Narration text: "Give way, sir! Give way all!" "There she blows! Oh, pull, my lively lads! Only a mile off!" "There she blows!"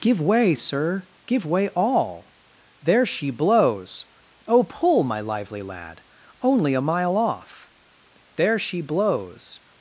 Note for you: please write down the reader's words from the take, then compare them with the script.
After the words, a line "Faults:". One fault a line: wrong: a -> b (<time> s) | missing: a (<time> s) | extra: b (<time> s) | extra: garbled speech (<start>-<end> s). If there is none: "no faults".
"Give way, sir! Give way all!" "There she blows! Oh, pull, my lively lad! Only a mile off!" "There she blows!"
Faults:
wrong: lads -> lad (5.6 s)